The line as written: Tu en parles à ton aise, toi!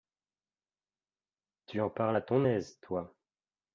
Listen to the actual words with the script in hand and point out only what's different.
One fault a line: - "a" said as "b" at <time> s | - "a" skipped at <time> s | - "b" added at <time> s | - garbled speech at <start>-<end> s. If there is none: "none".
none